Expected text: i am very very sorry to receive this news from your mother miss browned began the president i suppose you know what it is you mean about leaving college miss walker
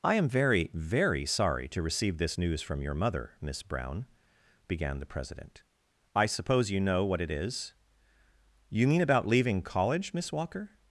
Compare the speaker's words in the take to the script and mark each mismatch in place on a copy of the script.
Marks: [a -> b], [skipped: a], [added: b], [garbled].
i am very very sorry to receive this news from your mother miss [browned -> brown] began the president i suppose you know what it is you mean about leaving college miss walker